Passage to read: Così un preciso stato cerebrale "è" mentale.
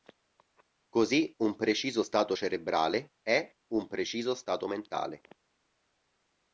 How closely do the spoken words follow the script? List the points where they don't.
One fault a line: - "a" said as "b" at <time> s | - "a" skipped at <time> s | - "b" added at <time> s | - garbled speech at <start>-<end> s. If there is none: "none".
- "un preciso stato" added at 3.7 s